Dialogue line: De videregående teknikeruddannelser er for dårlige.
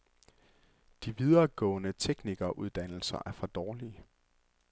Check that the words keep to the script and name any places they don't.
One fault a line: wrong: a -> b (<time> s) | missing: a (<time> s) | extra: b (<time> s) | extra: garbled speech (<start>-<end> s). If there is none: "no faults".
no faults